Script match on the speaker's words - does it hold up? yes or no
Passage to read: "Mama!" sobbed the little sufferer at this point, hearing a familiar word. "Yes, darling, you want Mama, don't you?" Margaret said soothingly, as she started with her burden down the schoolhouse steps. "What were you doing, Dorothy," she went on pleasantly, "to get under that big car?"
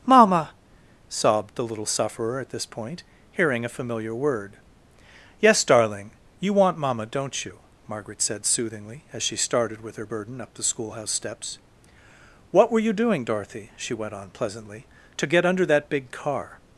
no